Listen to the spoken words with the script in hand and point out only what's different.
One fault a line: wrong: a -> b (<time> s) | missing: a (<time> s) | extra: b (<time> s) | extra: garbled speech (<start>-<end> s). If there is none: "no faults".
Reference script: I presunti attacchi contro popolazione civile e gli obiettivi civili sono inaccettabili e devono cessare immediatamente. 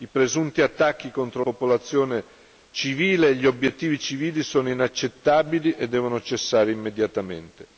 no faults